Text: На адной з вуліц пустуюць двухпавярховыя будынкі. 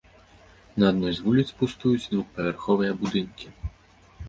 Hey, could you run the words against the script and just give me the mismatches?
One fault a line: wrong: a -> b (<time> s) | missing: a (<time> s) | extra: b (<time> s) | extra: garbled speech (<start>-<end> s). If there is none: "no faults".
no faults